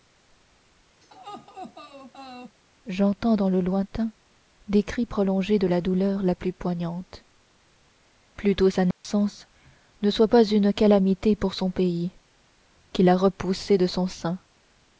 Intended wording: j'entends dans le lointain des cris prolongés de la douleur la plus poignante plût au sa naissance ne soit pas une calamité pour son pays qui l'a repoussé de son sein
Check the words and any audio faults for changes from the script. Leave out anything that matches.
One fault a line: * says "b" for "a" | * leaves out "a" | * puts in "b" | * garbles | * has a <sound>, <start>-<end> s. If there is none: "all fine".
* has a laugh, 1.0-2.6 s
* has a dropout, 8.9-9.0 s